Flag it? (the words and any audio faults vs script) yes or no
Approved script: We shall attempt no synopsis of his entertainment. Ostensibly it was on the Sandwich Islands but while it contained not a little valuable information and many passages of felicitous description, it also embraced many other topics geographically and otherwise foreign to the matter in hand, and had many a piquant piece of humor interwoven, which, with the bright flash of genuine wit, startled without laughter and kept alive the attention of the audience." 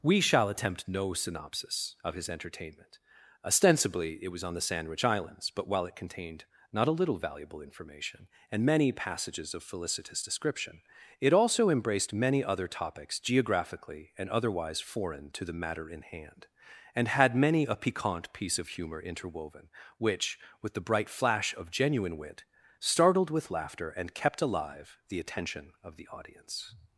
yes